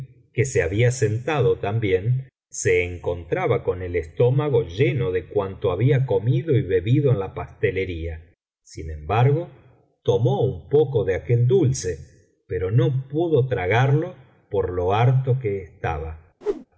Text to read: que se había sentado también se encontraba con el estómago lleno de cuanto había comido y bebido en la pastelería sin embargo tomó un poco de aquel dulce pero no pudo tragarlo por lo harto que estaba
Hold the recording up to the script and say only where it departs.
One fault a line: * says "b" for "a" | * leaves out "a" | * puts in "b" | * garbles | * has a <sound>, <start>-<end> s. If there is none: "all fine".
* has a whoosh, 16.4-16.7 s